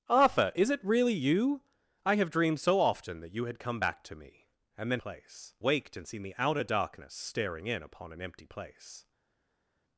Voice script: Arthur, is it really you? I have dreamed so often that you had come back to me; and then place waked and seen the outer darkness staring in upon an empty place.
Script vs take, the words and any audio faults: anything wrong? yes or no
no